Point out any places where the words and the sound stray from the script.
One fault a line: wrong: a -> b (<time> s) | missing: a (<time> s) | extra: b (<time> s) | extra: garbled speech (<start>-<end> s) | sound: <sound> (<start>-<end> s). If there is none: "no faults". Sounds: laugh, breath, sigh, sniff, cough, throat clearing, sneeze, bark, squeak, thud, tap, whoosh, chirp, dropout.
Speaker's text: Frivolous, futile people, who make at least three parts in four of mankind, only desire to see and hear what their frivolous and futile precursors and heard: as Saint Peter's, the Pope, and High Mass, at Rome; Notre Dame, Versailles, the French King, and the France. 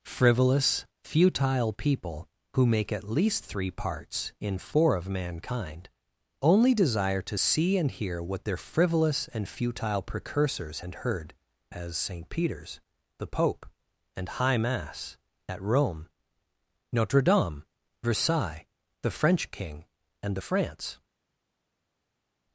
no faults